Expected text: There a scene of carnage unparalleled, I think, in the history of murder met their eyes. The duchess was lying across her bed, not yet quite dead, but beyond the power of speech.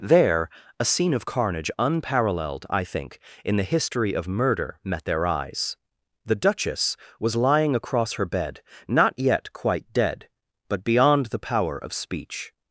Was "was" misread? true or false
false